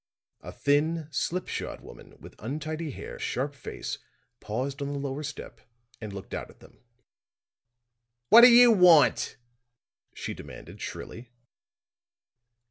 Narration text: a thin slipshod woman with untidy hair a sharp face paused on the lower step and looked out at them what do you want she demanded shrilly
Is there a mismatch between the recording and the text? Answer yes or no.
no